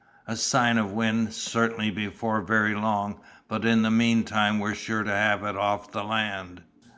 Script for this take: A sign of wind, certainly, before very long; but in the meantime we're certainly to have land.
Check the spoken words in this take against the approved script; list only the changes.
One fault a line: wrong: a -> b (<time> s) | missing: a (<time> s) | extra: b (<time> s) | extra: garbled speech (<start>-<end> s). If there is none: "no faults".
wrong: certainly -> sure (4.7 s)
extra: it off the (5.4 s)